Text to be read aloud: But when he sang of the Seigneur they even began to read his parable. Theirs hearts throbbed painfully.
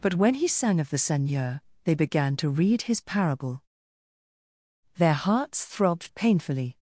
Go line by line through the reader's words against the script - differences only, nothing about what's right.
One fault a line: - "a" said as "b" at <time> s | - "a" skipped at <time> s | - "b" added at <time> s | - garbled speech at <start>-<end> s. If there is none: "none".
- "even" skipped at 1.9 s
- "Theirs" said as "Their" at 5.0 s